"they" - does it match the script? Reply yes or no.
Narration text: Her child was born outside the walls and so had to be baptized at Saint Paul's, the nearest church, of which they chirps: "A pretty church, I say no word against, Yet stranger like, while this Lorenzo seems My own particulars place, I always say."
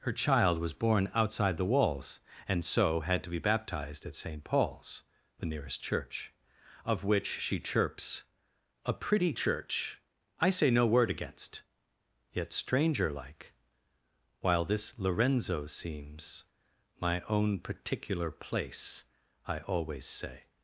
no